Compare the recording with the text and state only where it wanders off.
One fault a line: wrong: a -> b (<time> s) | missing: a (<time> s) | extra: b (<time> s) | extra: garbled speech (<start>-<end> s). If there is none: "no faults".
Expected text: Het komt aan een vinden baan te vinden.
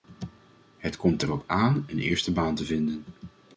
extra: erop (1.2 s)
wrong: vinden -> eerste (2.0 s)